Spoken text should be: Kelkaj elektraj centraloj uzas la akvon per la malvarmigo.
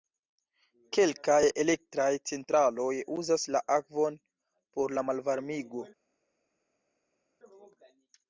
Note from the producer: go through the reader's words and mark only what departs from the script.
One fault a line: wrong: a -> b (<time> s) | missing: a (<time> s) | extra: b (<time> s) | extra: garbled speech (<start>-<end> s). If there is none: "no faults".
wrong: per -> por (4.8 s)